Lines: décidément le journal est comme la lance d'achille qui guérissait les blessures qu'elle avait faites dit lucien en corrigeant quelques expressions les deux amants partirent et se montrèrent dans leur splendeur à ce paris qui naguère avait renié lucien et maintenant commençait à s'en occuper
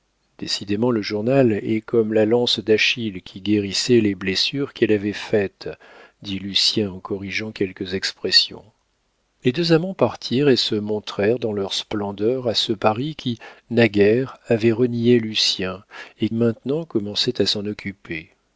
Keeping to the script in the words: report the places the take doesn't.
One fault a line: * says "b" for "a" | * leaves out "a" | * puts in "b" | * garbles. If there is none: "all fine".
all fine